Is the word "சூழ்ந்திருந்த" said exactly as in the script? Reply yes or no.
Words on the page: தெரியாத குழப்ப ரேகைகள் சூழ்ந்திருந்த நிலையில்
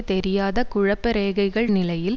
no